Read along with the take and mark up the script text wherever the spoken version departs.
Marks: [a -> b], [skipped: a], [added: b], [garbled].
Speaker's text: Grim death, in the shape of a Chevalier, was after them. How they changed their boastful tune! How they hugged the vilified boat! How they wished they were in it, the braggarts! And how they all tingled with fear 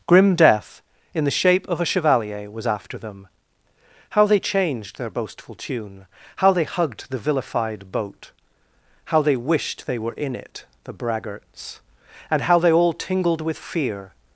Grim death, in the shape of a Chevalier, was after them. How they changed their boastful tune! How they hugged the vilified boat! How they wished they were in it, the braggarts! And how they all tingled with fear